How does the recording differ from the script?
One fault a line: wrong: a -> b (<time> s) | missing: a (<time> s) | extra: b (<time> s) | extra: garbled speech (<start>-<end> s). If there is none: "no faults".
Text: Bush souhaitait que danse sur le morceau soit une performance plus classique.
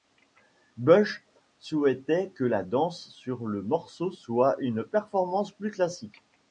extra: la (2.4 s)